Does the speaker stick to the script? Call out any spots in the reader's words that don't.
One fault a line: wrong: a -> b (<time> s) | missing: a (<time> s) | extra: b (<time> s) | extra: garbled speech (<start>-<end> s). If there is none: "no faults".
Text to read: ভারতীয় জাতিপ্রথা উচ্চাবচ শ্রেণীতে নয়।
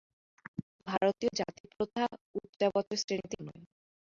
no faults